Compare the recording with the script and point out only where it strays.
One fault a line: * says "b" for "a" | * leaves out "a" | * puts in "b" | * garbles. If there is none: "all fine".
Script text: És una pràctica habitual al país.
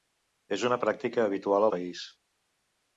* leaves out "al"